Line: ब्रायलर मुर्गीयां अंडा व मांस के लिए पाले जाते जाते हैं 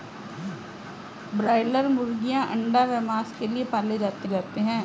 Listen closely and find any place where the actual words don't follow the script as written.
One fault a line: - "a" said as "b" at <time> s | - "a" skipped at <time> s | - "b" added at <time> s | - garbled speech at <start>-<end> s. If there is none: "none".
none